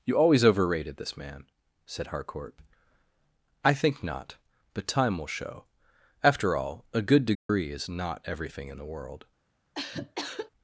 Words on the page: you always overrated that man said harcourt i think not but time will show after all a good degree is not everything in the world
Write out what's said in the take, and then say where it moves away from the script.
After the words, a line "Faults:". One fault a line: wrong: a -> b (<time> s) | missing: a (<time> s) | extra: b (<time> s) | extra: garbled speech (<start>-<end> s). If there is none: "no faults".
you always overrated this man said harcourt i think not but time will show after all a good degree is not everything in the world
Faults:
wrong: that -> this (1.0 s)